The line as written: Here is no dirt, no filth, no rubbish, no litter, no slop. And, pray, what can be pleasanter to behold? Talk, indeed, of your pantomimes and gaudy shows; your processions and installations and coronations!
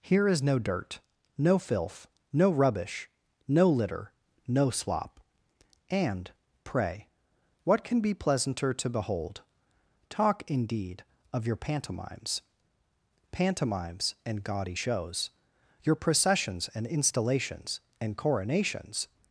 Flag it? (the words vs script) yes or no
yes